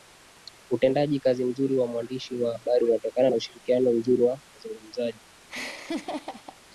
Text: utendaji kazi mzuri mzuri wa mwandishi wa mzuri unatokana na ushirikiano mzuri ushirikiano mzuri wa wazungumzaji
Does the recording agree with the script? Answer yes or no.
no